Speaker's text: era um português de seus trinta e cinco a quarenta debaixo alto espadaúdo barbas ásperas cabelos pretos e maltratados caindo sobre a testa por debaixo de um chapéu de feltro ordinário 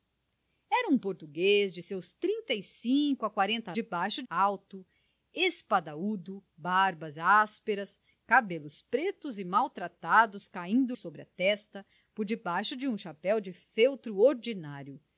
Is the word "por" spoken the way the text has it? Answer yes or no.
yes